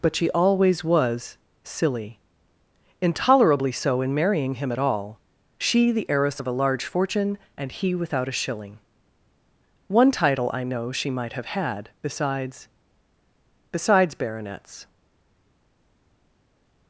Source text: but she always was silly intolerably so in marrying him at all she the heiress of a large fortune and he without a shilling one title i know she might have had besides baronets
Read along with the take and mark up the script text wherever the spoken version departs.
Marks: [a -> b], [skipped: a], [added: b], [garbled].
but she always was silly intolerably so in marrying him at all she the heiress of a large fortune and he without a shilling one title i know she might have had besides [added: besides] baronets